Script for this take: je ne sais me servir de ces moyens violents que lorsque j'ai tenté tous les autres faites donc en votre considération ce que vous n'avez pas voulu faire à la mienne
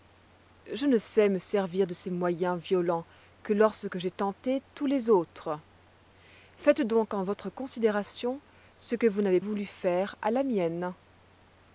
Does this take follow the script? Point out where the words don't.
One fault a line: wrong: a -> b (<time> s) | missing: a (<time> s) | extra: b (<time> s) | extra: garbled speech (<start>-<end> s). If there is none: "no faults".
missing: pas (9.4 s)